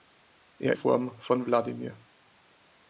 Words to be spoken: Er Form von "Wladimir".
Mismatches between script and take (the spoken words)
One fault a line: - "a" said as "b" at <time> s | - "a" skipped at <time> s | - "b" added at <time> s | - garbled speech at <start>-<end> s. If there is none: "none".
none